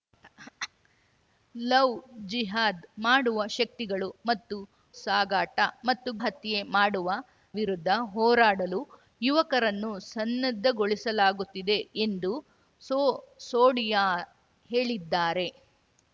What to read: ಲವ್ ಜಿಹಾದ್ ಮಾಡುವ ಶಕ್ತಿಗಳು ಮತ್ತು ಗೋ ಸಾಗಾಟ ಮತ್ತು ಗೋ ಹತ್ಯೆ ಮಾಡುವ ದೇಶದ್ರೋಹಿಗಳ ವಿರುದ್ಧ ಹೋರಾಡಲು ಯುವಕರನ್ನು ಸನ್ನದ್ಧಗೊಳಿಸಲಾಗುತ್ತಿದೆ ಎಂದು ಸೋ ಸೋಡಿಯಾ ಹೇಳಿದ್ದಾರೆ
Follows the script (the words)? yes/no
no